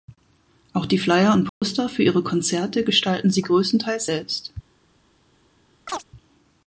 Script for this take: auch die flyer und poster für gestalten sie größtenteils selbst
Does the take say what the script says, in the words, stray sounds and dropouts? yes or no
no